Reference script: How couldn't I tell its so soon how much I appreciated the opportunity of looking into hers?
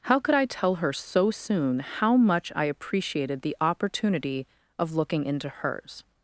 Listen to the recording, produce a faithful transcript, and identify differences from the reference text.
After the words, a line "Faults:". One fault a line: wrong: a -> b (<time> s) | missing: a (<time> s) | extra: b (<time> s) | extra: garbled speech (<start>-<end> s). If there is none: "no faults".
How could I tell her so soon how much I appreciated the opportunity of looking into hers?
Faults:
wrong: couldn't -> could (0.2 s)
wrong: its -> her (0.8 s)